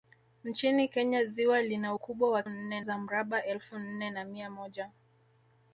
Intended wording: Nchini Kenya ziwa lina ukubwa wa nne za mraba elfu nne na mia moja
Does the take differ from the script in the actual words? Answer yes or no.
no